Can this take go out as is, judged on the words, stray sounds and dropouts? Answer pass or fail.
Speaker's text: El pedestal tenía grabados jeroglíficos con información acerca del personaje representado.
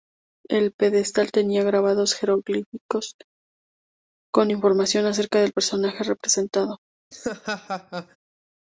fail